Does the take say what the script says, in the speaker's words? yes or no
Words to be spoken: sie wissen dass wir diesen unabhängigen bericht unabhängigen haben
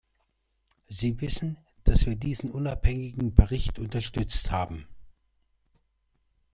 no